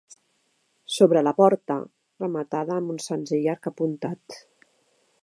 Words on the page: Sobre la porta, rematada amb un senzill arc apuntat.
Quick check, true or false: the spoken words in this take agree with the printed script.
true